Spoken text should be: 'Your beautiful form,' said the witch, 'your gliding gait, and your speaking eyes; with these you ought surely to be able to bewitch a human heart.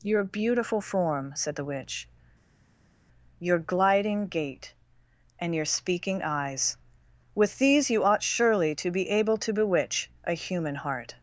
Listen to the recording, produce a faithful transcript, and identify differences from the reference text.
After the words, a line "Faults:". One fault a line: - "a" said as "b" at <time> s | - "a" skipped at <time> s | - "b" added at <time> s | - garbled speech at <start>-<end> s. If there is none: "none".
'Your beautiful form,' said the witch, 'your gliding gait, and your speaking eyes; with these you ought surely to be able to bewitch a human heart.
Faults:
none